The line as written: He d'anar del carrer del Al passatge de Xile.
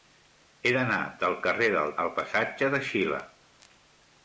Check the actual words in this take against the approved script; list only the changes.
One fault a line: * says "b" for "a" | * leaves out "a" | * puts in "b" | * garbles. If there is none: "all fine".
all fine